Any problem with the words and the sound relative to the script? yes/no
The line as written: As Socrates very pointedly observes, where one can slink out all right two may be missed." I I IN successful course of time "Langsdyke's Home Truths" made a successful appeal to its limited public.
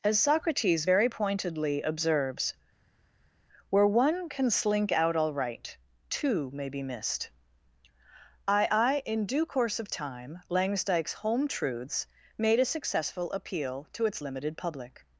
yes